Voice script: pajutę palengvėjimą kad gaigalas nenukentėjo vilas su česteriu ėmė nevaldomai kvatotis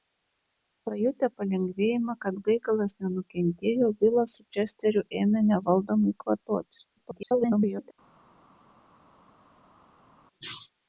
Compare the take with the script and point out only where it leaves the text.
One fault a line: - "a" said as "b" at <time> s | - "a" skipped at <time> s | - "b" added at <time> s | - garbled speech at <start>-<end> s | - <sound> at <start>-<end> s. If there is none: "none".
- garbled speech at 7.0-7.9 s